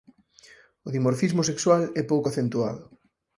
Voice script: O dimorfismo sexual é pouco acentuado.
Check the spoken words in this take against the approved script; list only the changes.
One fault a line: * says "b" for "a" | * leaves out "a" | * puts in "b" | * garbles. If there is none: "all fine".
all fine